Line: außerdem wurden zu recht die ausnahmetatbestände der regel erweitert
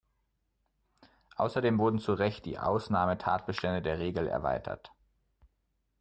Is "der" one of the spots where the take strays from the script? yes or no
no